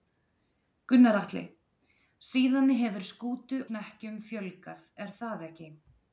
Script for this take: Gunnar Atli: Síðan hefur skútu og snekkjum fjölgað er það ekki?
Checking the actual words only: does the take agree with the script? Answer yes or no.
no